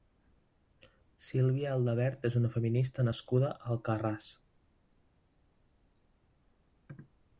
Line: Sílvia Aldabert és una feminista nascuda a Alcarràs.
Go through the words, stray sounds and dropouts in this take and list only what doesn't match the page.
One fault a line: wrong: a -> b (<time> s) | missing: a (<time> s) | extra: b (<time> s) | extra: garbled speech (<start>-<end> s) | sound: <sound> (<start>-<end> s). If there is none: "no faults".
no faults